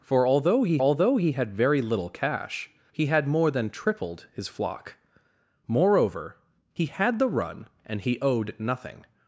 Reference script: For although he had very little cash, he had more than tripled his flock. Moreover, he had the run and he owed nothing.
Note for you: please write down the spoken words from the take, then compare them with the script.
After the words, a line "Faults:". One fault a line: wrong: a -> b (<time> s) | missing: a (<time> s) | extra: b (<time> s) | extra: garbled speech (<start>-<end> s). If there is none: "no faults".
For although he although he had very little cash, he had more than tripled his flock. Moreover, he had the run and he owed nothing.
Faults:
extra: although he (0.8 s)